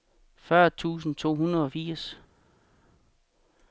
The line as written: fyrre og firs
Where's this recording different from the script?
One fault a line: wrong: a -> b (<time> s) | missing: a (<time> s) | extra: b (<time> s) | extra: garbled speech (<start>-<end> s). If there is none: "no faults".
extra: tusind to hundrede (0.7 s)